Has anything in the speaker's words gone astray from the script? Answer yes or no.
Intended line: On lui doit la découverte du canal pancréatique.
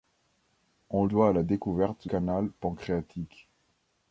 yes